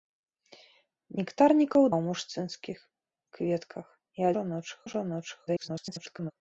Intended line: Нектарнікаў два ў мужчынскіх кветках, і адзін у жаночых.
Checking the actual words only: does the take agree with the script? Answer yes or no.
no